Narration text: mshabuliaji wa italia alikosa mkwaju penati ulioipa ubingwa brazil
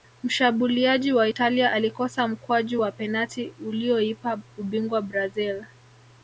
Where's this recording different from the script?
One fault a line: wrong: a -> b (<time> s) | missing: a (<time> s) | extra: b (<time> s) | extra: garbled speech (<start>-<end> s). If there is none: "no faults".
extra: wa (2.8 s)